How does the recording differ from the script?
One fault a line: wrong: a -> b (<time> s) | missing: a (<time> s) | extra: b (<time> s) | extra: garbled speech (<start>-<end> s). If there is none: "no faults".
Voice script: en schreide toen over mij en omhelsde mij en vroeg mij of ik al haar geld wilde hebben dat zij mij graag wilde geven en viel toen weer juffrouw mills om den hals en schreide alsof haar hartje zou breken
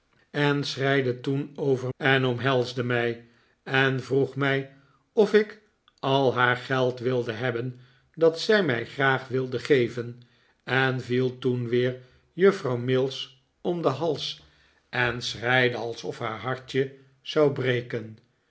missing: mij (1.9 s)